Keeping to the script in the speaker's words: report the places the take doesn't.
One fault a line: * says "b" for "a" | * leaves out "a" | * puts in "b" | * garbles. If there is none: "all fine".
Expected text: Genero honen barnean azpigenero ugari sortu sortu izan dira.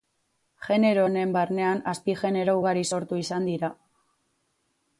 * leaves out "sortu"